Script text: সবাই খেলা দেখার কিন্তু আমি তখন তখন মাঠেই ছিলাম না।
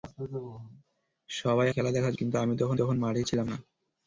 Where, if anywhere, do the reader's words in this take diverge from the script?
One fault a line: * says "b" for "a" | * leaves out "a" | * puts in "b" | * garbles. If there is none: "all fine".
all fine